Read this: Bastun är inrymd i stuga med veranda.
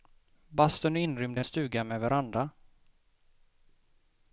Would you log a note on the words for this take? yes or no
no